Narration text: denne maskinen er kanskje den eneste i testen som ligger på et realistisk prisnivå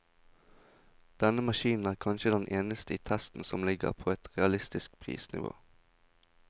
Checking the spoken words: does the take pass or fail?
pass